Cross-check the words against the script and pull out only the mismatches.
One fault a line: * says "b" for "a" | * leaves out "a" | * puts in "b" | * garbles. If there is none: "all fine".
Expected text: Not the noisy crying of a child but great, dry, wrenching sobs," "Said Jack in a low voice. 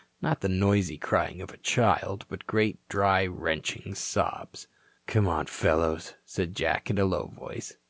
* puts in "Come on fellows"